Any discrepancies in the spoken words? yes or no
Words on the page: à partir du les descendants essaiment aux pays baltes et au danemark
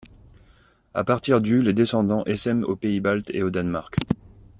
no